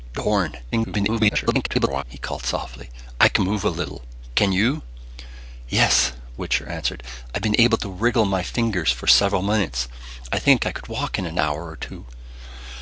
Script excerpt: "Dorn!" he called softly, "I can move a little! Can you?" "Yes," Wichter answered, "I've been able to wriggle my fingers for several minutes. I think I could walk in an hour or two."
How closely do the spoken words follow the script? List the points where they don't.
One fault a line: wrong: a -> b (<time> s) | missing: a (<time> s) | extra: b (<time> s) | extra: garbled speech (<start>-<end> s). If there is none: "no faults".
extra: garbled speech (0.7-2.0 s)